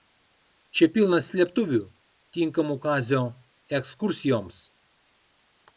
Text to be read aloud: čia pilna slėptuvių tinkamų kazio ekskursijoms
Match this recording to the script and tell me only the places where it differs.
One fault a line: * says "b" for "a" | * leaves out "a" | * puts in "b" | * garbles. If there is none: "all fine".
all fine